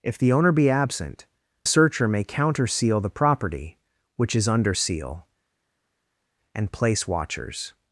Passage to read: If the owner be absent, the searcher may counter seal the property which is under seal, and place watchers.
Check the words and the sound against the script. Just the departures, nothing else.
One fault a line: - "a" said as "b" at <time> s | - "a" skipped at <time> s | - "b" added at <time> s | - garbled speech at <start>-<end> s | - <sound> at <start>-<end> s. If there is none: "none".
- "the" skipped at 1.3 s